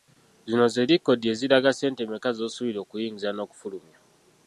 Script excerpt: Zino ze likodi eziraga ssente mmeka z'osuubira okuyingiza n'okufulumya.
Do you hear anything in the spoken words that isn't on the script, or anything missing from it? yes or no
no